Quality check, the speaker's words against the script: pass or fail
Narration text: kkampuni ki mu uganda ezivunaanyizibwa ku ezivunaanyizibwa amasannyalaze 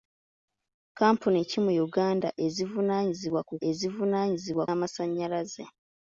pass